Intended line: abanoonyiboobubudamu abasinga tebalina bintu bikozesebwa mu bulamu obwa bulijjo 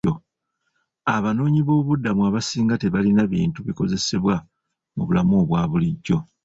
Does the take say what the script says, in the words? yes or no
yes